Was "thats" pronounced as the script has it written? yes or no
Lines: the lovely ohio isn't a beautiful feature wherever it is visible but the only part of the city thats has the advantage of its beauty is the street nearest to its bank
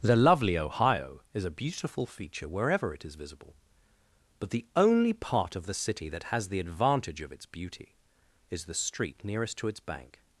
no